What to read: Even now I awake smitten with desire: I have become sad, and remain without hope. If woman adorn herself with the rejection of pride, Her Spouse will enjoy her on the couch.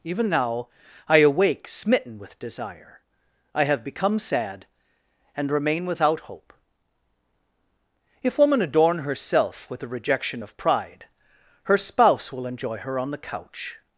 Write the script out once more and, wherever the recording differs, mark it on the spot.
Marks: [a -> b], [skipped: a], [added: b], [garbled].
Even now I awake smitten with desire: I have become sad, and remain without hope. If woman adorn herself with the rejection of pride, Her Spouse will enjoy her on the couch.